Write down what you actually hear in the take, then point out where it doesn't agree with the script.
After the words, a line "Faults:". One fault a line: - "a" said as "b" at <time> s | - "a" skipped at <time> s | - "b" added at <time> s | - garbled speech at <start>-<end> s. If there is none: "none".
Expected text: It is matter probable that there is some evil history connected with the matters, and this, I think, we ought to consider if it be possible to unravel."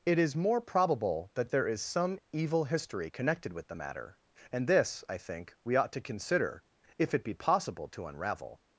It is more probable that there is some evil history connected with the matter, and this, I think, we ought to consider if it be possible to unravel."
Faults:
- "matter" said as "more" at 0.3 s
- "matters" said as "matter" at 3.7 s